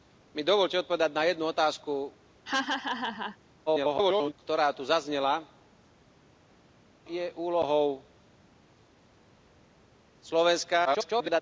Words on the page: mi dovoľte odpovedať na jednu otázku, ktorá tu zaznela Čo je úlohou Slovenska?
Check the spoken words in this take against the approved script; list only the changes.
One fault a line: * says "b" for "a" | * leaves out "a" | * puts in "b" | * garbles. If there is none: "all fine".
* garbles
* leaves out "Čo"
* garbles